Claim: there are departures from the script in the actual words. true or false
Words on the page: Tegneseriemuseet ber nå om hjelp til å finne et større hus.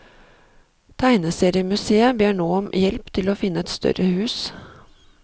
false